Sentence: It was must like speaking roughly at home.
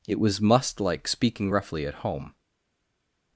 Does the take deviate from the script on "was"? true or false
false